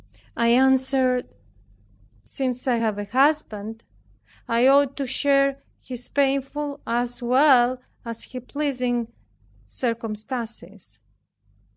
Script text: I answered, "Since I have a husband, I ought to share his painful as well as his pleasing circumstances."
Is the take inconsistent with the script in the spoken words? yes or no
no